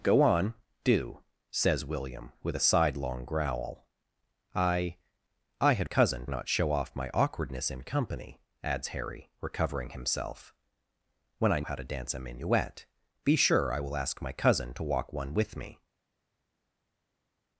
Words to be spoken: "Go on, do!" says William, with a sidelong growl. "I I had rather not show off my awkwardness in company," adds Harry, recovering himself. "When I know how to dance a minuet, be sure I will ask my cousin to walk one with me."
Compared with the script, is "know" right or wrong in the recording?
wrong